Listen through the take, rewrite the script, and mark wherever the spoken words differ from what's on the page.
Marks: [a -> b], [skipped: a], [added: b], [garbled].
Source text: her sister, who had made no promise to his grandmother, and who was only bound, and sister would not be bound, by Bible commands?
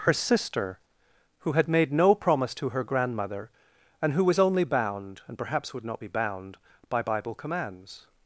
her sister, who had made no promise to [his -> her] grandmother, and who was only bound, and [sister -> perhaps] would not be bound, by Bible commands?